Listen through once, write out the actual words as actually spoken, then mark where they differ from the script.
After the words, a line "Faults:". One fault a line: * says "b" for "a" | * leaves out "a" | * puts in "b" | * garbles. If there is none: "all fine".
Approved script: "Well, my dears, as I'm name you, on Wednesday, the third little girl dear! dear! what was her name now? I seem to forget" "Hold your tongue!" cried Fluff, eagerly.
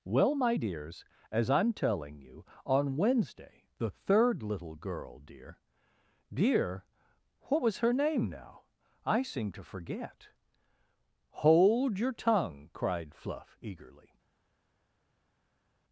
"Well, my dears, as I'm telling you, on Wednesday, the third little girl dear! dear! what was her name now? I seem to forget" "Hold your tongue!" cried Fluff, eagerly.
Faults:
* says "telling" for "name"